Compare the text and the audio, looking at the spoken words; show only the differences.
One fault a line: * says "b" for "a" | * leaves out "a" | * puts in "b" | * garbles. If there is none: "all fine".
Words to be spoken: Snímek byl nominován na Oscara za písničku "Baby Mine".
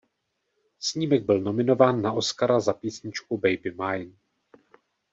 all fine